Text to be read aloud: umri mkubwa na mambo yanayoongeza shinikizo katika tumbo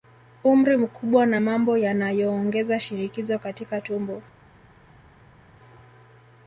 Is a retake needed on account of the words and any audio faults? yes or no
no